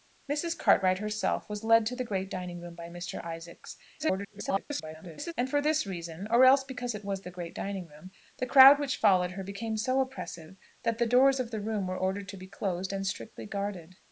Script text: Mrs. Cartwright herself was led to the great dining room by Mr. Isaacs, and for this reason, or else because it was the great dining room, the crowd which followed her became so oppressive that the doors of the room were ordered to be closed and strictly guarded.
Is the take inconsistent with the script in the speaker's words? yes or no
yes